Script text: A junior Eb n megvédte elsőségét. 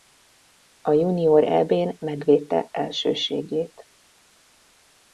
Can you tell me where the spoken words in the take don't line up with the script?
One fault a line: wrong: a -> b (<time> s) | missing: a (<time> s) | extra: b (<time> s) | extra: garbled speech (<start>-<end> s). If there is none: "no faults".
no faults